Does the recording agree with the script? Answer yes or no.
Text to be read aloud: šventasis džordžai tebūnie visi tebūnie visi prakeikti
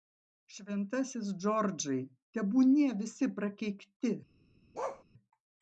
no